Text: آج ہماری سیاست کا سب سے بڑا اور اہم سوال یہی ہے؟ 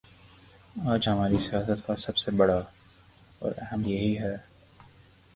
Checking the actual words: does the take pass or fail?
fail